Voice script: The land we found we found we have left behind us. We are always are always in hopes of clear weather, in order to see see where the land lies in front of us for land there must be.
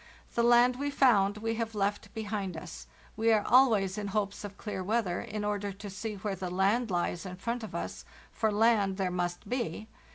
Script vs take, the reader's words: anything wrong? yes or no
yes